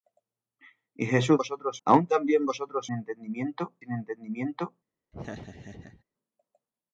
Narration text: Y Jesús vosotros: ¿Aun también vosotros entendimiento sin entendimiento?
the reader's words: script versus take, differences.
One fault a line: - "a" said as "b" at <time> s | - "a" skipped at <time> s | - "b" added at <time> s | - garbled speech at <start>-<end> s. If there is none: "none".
none